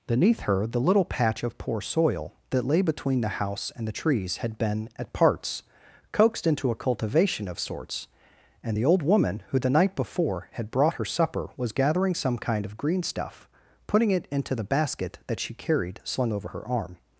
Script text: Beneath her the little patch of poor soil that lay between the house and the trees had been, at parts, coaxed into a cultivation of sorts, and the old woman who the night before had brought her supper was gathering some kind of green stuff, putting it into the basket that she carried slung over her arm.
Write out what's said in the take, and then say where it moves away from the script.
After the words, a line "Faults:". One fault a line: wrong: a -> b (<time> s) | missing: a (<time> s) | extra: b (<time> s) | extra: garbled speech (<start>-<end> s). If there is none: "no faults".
Beneath her the little patch of poor soil that lay between the house and the trees had been, at parts, coaxed into a cultivation of sorts, and the old woman who the night before had brought her supper was gathering some kind of green stuff, putting it into the basket that she carried slung over her arm.
Faults:
no faults